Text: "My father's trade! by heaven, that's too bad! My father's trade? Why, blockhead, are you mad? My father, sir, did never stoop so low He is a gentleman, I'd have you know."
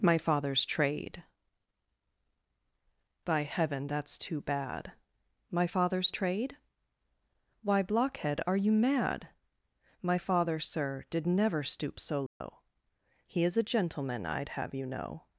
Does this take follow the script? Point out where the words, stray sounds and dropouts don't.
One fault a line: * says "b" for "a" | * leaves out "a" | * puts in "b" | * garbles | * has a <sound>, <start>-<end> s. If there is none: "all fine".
* has a dropout, 12.3-12.4 s